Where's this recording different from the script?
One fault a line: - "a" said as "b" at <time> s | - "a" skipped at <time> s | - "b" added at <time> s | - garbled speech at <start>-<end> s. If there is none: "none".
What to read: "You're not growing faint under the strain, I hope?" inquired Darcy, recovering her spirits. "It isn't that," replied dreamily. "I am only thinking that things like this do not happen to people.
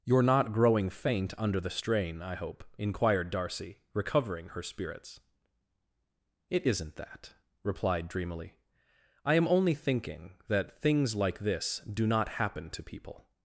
none